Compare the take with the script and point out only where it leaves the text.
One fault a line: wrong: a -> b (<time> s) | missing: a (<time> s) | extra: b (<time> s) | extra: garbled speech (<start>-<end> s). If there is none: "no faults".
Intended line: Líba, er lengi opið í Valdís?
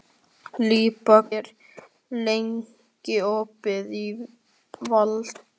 no faults